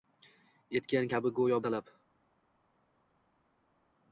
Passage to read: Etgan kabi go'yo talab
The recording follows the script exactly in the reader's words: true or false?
true